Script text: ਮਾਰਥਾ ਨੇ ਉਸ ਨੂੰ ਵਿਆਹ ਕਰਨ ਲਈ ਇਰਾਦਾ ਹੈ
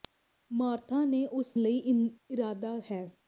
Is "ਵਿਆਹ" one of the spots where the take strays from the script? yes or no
yes